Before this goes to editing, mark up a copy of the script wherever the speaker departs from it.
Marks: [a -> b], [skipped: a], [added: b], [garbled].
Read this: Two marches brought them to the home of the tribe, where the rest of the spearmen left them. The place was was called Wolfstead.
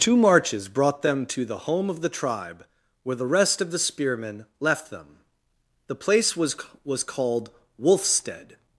Two marches brought them to the home of the tribe, where the rest of the spearmen left them. The place was was called Wolfstead.